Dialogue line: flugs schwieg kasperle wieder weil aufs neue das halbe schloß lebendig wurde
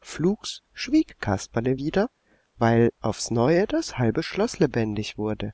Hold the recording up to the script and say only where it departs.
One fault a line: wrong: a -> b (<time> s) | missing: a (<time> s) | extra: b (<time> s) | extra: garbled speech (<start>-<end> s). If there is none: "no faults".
no faults